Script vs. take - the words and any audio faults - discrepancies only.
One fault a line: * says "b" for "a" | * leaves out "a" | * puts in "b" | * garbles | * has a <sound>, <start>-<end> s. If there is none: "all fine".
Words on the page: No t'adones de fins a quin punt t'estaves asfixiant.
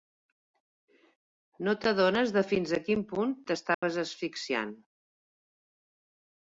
* has a dropout, 3.7-3.8 s